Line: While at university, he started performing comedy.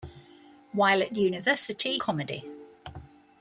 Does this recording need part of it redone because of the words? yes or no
yes